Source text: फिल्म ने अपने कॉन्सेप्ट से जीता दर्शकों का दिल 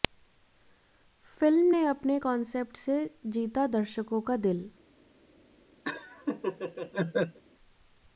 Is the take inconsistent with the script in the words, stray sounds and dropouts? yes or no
yes